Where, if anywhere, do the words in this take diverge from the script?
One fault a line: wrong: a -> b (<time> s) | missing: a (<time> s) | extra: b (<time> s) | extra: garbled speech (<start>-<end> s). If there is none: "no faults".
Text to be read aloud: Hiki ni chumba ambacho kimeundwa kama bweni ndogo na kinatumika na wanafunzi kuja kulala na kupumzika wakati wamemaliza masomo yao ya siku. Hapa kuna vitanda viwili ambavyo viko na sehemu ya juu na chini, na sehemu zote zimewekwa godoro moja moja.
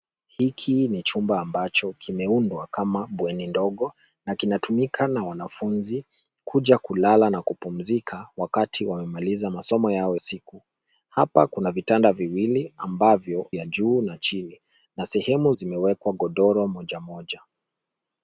missing: ya (10.2 s)
missing: viko na sehemu (13.5 s)
missing: zote (15.5 s)